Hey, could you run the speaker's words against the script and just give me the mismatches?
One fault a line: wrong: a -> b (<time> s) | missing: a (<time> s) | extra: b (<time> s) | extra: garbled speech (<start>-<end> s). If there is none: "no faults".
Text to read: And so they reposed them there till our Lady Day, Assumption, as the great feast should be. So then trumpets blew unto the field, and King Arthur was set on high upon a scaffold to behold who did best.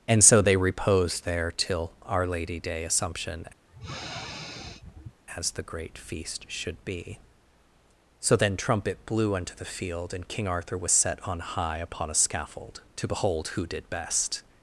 missing: them (1.2 s)
wrong: trumpets -> trumpet (8.6 s)